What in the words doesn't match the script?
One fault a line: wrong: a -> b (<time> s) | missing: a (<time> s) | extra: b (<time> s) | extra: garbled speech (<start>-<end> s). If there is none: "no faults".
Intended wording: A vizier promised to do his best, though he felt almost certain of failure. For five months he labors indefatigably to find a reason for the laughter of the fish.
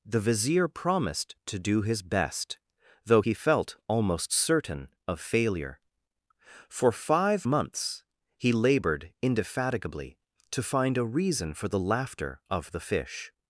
wrong: A -> The (0.0 s)
wrong: labors -> labored (8.5 s)